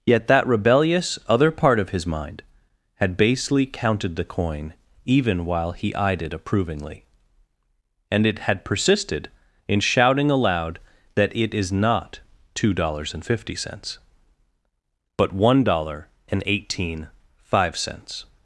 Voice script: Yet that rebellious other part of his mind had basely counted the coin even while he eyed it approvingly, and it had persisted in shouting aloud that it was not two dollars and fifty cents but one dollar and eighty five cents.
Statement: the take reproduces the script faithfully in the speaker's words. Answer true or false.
false